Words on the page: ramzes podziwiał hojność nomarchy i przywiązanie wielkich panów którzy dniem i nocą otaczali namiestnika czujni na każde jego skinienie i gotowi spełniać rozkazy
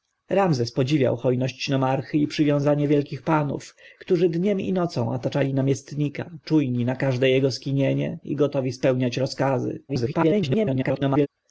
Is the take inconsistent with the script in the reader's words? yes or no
yes